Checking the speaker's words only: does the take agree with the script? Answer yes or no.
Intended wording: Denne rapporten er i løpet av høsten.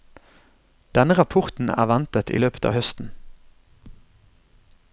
no